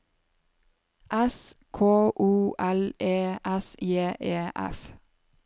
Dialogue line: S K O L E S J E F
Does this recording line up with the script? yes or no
yes